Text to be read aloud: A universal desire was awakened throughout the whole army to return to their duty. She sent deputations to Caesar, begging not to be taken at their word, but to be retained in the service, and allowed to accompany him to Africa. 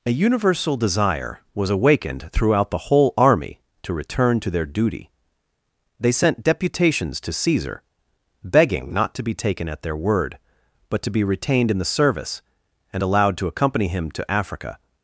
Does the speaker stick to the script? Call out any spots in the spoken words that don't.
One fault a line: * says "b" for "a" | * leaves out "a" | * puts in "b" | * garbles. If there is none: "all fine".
* says "They" for "She"